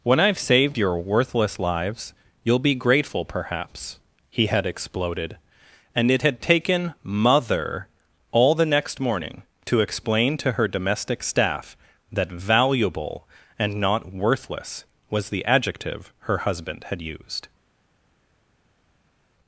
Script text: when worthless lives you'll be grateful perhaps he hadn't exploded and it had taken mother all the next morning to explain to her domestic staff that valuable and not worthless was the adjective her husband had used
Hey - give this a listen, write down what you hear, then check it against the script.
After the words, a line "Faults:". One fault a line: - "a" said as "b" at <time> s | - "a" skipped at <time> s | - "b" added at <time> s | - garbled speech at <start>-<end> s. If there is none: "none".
when i've saved your worthless lives you'll be grateful perhaps he had exploded and it had taken mother all the next morning to explain to her domestic staff that valuable and not worthless was the adjective her husband had used
Faults:
- "i've saved your" added at 0.2 s
- "hadn't" said as "had" at 4.5 s